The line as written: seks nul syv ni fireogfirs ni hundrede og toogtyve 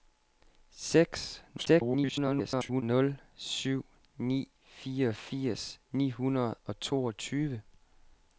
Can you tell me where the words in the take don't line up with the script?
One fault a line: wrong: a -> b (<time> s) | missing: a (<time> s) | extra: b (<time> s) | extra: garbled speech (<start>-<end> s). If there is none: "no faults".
extra: garbled speech (1.6-2.8 s)